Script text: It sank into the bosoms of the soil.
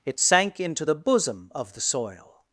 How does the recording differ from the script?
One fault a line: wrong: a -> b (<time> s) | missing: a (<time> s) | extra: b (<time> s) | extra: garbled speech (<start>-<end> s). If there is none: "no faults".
wrong: bosoms -> bosom (0.9 s)